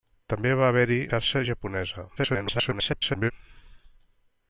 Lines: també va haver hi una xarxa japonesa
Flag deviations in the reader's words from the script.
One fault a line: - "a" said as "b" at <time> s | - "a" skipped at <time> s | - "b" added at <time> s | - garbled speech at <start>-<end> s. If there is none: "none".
- "una" skipped at 1.0 s
- garbled speech at 2.2-3.3 s